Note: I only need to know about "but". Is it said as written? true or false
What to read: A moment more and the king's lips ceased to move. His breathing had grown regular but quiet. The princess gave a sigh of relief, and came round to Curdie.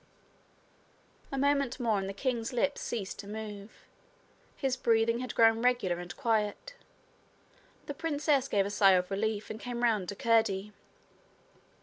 false